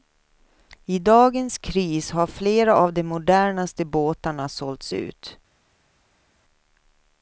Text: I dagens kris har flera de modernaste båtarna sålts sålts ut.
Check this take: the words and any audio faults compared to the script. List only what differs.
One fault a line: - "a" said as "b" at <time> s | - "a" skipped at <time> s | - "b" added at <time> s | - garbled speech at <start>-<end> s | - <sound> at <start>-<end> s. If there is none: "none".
- "av" added at 2.7 s
- "sålts" skipped at 4.9 s